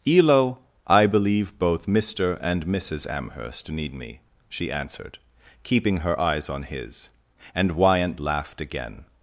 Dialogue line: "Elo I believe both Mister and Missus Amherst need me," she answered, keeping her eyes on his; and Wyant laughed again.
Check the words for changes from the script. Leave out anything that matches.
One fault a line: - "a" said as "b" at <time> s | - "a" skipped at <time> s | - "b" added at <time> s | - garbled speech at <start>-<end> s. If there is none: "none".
none